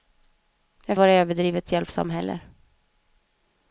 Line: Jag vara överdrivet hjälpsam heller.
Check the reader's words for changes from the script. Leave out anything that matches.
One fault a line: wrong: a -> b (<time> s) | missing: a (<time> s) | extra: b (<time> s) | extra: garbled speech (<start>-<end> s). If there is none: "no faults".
no faults